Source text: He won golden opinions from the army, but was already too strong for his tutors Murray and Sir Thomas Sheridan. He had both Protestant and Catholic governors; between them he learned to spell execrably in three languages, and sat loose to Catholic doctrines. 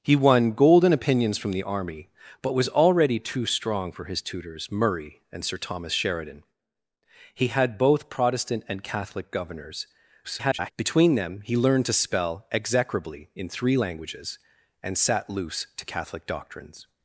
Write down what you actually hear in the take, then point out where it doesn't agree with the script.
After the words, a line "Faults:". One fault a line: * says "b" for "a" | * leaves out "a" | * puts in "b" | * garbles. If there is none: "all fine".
He won golden opinions from the army, but was already too strong for his tutors Murray and Sir Thomas Sheridan. He had both Protestant and Catholic governors; [garbled] between them he learned to spell execrably in three languages, and sat loose to Catholic doctrines.
Faults:
* garbles